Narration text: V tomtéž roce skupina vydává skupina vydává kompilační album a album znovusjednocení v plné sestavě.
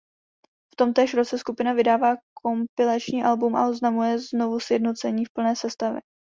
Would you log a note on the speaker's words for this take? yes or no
yes